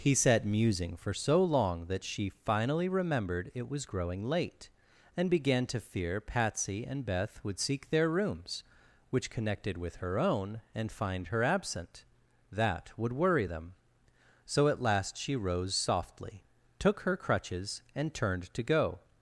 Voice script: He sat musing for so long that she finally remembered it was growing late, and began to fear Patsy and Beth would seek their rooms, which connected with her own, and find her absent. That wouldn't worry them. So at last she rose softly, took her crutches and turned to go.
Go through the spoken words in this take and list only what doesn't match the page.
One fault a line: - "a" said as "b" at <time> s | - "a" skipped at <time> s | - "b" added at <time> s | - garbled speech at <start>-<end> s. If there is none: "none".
- "wouldn't" said as "would" at 13.0 s